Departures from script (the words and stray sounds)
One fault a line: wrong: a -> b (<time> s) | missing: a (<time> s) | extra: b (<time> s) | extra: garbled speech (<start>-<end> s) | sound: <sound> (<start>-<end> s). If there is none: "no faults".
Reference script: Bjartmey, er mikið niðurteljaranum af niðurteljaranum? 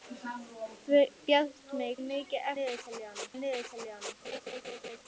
sound: laugh (4.2-5.0 s)